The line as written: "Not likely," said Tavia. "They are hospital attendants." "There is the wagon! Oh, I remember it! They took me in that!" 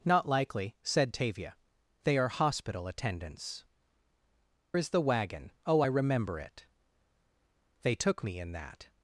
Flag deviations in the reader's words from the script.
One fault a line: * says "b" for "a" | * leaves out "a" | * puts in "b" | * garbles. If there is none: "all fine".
* leaves out "There"